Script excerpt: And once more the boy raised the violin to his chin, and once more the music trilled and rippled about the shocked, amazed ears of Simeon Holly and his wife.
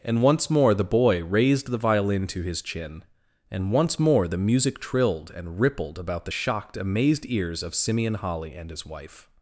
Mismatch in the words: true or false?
false